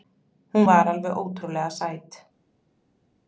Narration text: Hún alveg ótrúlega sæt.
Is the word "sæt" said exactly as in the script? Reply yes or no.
yes